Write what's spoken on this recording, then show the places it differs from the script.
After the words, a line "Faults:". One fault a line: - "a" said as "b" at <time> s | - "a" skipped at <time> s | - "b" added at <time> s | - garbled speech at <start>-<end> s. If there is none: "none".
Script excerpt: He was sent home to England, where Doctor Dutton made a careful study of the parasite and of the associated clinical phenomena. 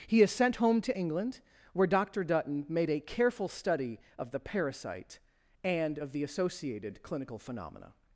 He is sent home to England, where Doctor Dutton made a careful study of the parasite and of the associated clinical phenomena.
Faults:
- "was" said as "is" at 0.2 s